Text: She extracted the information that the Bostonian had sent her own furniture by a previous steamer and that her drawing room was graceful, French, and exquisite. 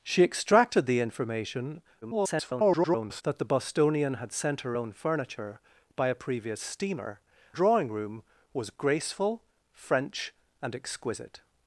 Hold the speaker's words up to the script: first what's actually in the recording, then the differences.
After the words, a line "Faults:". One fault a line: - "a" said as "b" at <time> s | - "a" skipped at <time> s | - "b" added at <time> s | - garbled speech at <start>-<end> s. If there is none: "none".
She extracted the information [garbled] that the Bostonian had sent her own furniture by a previous steamer drawing room was graceful, French, and exquisite.
Faults:
- garbled speech at 2.0-3.2 s
- "and that her" skipped at 7.2 s